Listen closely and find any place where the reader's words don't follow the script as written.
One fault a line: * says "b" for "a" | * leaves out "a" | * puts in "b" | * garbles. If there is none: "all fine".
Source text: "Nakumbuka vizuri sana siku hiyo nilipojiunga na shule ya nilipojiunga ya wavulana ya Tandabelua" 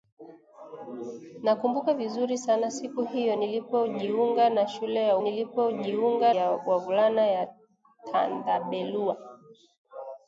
all fine